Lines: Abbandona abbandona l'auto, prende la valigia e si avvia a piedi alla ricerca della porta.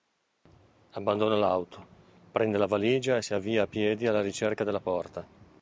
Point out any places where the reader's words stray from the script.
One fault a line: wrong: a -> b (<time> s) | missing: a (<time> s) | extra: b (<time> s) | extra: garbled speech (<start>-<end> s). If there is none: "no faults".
missing: abbandona (1.4 s)